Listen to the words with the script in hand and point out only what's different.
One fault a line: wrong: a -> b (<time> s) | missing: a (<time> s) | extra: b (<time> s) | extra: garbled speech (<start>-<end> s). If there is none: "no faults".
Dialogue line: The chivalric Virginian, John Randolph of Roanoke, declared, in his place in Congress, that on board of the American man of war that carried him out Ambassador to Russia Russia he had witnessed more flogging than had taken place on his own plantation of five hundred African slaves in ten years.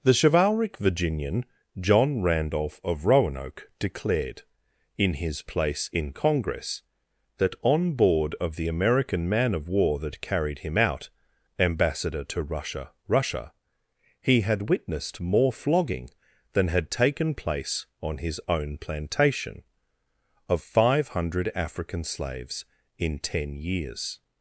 no faults